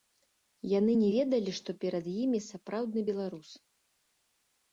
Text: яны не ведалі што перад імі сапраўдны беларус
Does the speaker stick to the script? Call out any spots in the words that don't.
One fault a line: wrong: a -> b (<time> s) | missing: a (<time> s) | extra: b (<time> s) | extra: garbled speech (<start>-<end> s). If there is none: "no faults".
no faults